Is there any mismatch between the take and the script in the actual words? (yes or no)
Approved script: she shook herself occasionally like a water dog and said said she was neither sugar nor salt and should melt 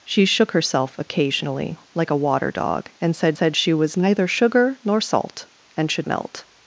no